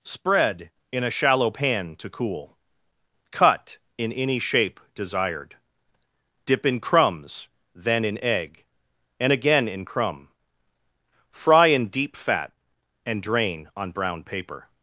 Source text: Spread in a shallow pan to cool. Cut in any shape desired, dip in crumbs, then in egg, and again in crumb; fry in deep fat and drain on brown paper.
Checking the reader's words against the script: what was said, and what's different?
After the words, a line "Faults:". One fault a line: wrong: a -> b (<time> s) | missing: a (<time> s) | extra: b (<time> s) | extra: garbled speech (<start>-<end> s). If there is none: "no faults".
Spread in a shallow pan to cool. Cut in any shape desired, dip in crumbs, then in egg, and again in crumb; fry in deep fat and drain on brown paper.
Faults:
no faults